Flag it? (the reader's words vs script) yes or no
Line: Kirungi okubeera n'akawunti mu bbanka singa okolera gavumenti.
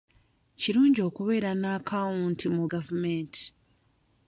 yes